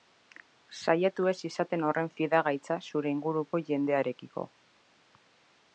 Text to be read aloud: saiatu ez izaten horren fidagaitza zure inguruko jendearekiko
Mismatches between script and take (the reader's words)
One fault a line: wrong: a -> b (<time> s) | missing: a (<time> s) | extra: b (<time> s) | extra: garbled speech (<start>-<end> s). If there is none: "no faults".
no faults